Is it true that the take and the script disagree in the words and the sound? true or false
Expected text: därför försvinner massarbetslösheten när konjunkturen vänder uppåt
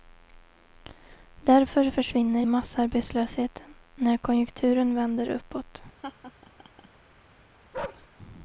true